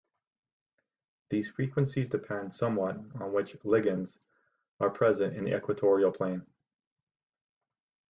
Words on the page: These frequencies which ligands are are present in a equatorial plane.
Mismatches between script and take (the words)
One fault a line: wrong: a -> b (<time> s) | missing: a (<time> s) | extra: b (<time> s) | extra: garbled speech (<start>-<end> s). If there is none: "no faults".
extra: depend somewhat on (2.1 s)
missing: are (4.9 s)
wrong: a -> the (5.4 s)